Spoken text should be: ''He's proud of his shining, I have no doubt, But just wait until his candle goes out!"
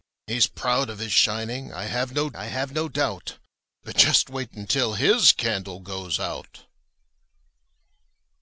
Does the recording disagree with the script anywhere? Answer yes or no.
yes